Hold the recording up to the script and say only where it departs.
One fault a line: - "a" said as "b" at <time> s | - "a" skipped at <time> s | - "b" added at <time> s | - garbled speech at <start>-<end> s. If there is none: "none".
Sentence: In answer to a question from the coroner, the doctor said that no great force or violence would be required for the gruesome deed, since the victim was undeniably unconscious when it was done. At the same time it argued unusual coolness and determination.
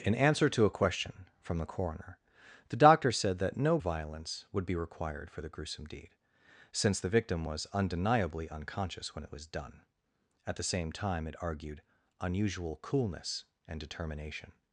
- "great force or" skipped at 3.8 s